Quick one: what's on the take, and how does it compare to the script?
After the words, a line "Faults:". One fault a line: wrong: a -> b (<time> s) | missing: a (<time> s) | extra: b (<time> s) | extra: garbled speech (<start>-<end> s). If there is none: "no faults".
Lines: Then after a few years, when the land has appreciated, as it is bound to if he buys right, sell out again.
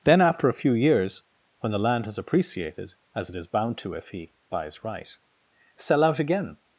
Then after a few years, when the land has appreciated, as it is bound to if he buys right, sell out again.
Faults:
no faults